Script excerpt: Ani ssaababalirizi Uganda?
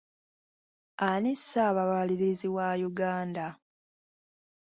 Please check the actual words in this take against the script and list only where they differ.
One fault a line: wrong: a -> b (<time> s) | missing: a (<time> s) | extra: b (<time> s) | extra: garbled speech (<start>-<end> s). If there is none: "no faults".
extra: wa (2.6 s)